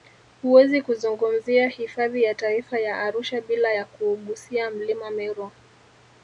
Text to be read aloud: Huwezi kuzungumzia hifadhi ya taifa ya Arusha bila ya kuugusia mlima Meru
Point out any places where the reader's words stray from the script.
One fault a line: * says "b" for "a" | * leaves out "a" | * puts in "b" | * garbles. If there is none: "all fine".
all fine